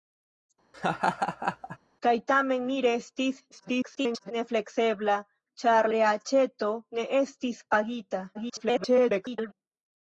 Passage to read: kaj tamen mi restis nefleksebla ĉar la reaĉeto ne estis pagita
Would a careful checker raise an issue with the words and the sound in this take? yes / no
yes